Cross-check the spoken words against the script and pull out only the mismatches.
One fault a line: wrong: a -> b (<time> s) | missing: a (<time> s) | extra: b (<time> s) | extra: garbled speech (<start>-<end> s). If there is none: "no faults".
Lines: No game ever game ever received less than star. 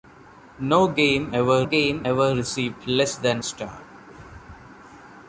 no faults